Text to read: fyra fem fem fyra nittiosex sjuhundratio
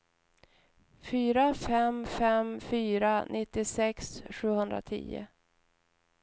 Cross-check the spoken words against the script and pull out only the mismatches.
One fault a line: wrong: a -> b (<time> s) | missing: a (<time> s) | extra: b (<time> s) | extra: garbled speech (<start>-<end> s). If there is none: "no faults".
no faults